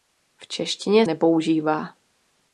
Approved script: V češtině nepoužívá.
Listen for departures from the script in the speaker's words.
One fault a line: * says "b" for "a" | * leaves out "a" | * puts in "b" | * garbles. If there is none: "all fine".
all fine